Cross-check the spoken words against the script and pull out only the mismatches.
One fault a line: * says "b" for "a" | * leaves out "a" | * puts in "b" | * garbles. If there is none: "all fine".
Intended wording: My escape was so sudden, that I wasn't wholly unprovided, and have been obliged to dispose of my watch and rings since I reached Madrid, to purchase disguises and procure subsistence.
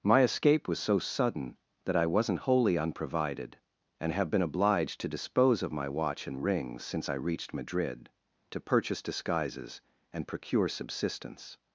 all fine